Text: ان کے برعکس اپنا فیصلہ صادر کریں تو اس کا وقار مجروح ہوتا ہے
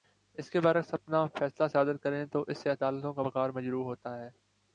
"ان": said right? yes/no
no